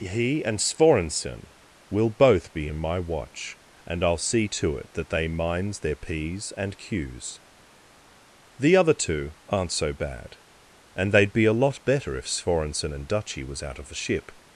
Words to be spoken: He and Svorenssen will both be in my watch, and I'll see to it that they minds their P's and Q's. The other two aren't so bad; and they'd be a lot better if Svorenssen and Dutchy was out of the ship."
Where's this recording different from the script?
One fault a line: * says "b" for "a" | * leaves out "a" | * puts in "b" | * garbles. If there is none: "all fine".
all fine